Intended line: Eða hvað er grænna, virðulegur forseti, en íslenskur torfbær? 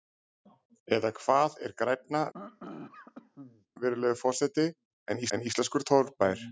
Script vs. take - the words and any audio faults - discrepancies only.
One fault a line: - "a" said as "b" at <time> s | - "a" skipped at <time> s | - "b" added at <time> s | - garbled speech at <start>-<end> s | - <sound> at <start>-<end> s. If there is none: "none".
- throat clearing at 2.3-3.7 s
- "en" added at 5.4 s